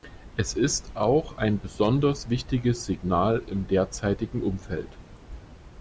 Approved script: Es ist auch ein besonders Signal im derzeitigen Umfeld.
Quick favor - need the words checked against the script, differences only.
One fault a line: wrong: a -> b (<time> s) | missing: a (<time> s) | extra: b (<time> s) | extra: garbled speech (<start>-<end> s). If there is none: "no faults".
extra: wichtiges (2.3 s)